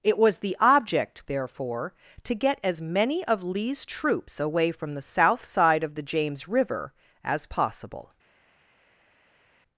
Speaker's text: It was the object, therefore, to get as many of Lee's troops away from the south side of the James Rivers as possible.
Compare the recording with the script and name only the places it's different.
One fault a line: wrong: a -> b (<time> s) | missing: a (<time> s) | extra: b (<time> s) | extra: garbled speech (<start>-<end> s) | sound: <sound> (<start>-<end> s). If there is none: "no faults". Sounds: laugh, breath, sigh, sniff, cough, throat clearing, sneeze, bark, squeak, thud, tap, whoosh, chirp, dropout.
wrong: Rivers -> River (6.5 s)